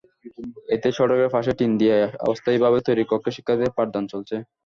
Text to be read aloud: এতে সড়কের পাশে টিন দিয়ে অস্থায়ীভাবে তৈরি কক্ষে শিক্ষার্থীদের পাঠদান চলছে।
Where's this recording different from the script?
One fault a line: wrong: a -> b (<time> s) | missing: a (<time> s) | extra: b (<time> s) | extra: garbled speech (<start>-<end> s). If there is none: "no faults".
no faults